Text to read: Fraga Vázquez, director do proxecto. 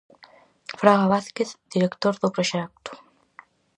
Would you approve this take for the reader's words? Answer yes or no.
yes